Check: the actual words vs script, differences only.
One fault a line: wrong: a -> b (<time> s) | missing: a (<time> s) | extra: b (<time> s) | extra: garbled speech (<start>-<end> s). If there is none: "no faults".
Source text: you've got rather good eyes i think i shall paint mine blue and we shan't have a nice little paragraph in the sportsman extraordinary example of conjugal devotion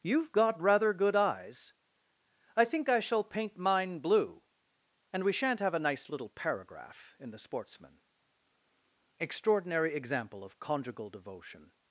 no faults